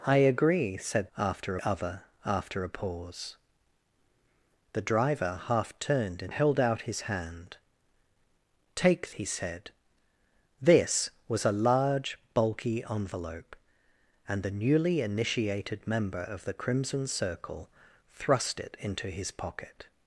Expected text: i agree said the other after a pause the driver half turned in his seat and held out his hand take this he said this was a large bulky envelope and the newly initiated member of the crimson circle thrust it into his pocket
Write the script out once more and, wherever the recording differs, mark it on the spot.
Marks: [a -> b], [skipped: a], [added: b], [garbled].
i agree said [the -> after] other after a pause the driver half turned in [skipped: his seat and] held out his hand take [skipped: this] he said this was a large bulky envelope and the newly initiated member of the crimson circle thrust it into his pocket